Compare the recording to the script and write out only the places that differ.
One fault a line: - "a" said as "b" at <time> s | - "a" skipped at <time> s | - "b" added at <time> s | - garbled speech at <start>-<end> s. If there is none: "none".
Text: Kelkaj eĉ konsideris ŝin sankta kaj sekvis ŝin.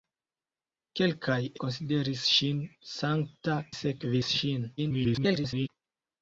- "eĉ" skipped at 1.4 s
- "kaj" skipped at 3.6 s
- garbled speech at 4.8-5.7 s